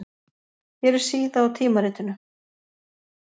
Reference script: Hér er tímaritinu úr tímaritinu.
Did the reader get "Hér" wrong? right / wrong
right